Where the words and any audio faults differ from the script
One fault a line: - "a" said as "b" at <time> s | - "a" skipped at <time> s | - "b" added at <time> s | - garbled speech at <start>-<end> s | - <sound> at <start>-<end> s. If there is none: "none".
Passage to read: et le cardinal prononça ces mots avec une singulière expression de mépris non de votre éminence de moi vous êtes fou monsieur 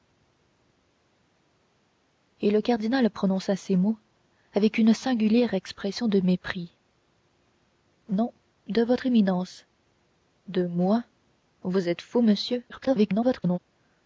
- garbled speech at 12.7-13.6 s